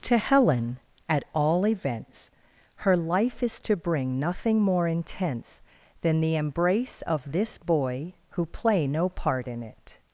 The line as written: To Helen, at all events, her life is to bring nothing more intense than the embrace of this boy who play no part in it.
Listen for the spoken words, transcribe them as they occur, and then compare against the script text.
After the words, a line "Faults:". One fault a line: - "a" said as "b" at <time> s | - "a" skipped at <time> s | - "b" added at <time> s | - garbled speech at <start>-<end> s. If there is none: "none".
To Helen, at all events, her life is to bring nothing more intense than the embrace of this boy who play no part in it.
Faults:
none